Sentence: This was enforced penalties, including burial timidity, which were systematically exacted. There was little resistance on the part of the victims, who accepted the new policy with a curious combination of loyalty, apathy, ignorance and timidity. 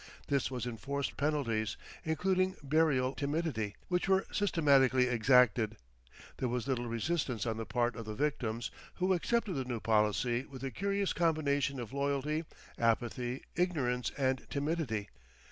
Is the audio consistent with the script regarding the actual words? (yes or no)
yes